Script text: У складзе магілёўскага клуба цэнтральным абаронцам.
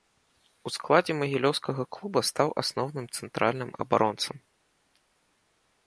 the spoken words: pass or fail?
fail